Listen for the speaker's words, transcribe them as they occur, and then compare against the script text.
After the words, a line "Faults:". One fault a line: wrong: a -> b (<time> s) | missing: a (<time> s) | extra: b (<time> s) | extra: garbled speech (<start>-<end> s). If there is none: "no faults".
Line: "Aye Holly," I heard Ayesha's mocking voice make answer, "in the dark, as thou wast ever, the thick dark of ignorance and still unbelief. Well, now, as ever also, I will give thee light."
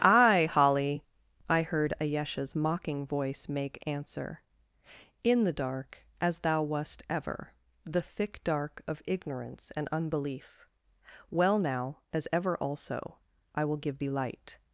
"Aye Holly," I heard Ayesha's mocking voice make answer, "in the dark, as thou wast ever, the thick dark of ignorance and unbelief. Well, now, as ever also, I will give thee light."
Faults:
missing: still (9.9 s)